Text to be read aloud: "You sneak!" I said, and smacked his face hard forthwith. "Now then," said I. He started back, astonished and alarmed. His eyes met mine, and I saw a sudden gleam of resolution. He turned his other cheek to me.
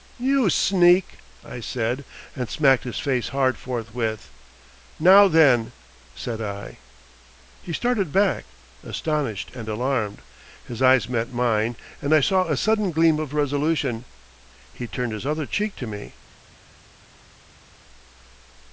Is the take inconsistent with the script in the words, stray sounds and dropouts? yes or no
no